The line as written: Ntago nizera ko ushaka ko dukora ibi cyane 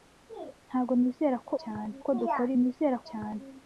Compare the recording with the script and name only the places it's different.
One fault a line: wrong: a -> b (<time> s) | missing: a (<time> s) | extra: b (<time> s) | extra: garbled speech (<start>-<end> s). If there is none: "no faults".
wrong: ushaka -> cyane (1.6 s)
wrong: ibi -> nizera (2.6 s)